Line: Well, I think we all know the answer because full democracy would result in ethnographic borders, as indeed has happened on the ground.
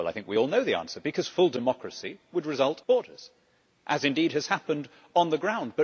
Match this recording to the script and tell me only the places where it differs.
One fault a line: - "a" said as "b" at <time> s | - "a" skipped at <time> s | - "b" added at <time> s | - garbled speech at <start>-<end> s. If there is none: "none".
- "in ethnographic" skipped at 2.8 s